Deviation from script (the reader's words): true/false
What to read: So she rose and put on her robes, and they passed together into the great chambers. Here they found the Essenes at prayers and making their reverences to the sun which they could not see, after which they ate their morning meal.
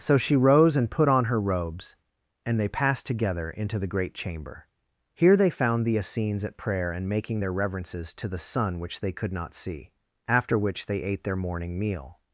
true